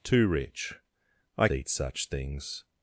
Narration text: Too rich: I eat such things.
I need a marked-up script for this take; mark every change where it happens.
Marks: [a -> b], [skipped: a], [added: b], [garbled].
Too rich: I eat such things.